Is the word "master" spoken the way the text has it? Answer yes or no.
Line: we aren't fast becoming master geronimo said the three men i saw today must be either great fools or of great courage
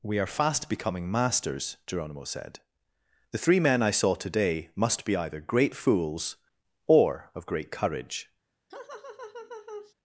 no